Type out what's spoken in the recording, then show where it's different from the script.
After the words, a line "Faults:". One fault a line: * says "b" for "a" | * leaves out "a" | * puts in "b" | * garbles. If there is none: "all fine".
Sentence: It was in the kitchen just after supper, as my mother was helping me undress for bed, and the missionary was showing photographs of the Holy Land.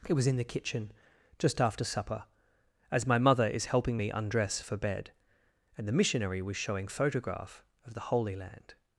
It was in the kitchen just after supper, as my mother is helping me undress for bed, and the missionary was showing photograph of the Holy Land.
Faults:
* says "is" for "was"
* says "photograph" for "photographs"